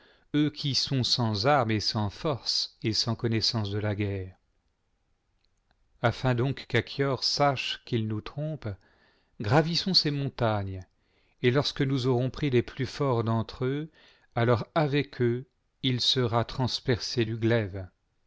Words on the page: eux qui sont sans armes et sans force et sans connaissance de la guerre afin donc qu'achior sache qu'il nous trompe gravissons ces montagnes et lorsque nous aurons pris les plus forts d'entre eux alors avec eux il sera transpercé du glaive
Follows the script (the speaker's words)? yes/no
yes